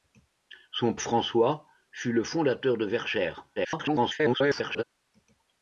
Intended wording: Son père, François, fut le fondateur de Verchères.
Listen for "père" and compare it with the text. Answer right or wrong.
wrong